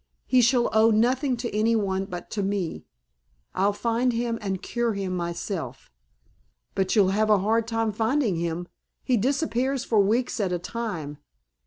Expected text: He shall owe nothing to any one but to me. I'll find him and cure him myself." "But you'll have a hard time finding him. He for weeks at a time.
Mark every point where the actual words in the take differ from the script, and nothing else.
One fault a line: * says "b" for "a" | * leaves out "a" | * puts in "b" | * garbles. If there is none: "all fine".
* puts in "disappears"